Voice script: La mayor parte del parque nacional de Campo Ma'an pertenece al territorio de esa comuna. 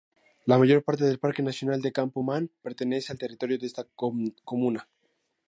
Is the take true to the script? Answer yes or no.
no